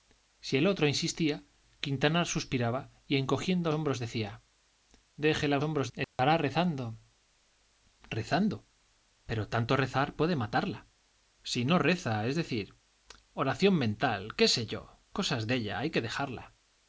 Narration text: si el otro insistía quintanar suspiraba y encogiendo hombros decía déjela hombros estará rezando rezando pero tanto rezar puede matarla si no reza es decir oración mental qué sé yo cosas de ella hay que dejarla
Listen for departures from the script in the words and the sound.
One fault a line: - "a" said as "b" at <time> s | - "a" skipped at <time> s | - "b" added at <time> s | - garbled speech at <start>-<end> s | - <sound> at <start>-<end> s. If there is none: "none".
- dropout at 6.0-6.2 s